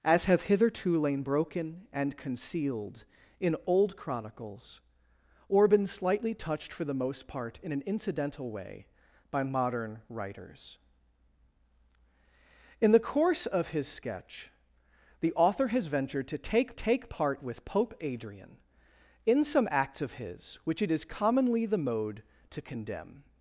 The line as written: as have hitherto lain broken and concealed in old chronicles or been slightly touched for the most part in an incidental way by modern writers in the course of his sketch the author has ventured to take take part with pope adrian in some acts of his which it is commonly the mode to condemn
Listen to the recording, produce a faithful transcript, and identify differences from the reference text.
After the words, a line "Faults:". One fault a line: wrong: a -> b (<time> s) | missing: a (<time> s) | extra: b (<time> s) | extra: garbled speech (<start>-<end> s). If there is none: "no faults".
as have hitherto lain broken and concealed in old chronicles or been slightly touched for the most part in an incidental way by modern writers in the course of his sketch the author has ventured to take take part with pope adrian in some acts of his which it is commonly the mode to condemn
Faults:
no faults